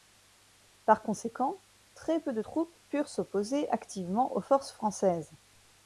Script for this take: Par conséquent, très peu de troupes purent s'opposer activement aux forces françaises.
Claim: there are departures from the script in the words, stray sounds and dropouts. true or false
false